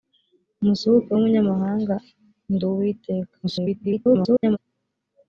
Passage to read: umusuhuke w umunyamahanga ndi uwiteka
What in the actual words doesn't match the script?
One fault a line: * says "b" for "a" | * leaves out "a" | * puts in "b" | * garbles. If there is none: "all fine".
* garbles